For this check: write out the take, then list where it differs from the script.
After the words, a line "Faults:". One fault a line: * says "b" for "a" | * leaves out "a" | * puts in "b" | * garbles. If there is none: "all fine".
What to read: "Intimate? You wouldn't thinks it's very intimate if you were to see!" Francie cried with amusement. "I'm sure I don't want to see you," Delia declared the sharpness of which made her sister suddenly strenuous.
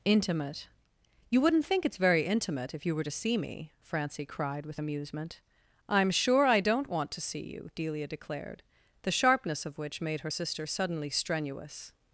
"Intimate? You wouldn't think it's very intimate if you were to see me!" Francie cried with amusement. "I'm sure I don't want to see you," Delia declared the sharpness of which made her sister suddenly strenuous.
Faults:
* says "think" for "thinks"
* puts in "me"